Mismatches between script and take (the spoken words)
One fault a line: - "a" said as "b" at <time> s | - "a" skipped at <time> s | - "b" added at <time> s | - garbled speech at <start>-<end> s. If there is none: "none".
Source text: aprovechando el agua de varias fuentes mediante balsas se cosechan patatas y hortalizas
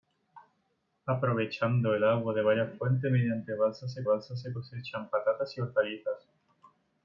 - "balsas se" added at 4.0 s